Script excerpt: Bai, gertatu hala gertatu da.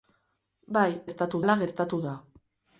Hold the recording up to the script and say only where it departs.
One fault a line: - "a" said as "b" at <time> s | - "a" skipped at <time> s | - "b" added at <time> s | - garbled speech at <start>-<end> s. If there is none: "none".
none